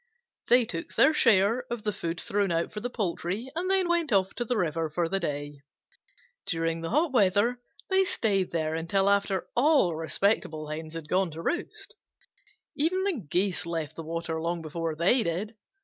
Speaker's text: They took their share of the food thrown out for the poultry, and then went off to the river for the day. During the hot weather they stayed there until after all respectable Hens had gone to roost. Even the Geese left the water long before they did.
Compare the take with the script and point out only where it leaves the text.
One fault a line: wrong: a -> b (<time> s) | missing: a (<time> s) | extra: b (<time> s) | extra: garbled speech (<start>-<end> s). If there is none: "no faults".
no faults